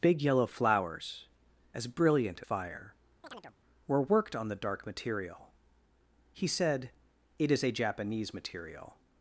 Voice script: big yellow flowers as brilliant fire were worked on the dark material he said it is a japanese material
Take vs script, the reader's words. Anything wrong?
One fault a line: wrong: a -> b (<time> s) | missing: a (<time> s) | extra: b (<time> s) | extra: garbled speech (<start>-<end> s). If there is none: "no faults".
no faults